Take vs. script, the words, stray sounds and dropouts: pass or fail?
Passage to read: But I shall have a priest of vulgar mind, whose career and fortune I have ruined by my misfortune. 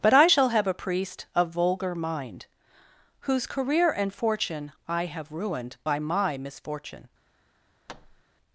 fail